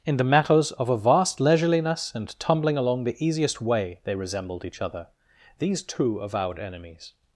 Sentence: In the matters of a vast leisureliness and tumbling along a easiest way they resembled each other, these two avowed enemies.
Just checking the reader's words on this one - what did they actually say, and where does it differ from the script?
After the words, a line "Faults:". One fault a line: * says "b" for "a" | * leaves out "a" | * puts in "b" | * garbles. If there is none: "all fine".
In the matters of a vast leisureliness and tumbling along the easiest way they resembled each other, these two avowed enemies.
Faults:
* says "the" for "a"